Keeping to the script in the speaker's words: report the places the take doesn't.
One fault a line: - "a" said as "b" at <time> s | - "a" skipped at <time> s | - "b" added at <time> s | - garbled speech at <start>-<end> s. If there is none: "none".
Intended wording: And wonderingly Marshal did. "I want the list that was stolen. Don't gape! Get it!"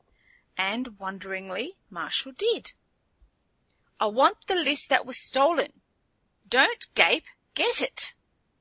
none